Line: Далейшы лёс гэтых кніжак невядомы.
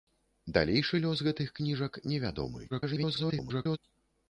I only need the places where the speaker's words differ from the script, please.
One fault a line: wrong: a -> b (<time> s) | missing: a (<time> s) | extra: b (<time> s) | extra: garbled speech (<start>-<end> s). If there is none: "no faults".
extra: garbled speech (2.7-3.8 s)